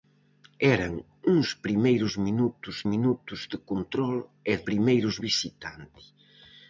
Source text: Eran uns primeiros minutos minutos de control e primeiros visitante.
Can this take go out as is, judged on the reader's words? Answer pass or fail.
pass